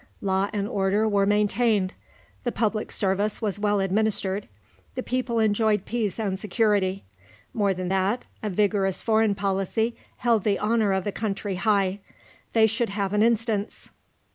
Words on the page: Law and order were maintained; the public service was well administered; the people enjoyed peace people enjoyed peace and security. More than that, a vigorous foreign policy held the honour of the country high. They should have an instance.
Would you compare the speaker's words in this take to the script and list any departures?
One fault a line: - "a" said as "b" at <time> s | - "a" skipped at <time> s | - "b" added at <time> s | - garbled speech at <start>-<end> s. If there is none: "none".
- "people enjoyed peace" skipped at 6.2 s